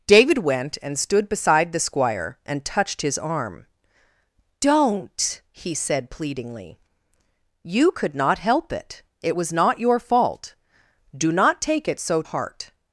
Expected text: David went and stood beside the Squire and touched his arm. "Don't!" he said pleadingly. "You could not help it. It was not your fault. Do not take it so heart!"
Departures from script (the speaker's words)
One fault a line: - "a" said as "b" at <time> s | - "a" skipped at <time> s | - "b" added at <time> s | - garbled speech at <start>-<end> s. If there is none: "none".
none